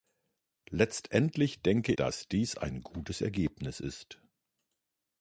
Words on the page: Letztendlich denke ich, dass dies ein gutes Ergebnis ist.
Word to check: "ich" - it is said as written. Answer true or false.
false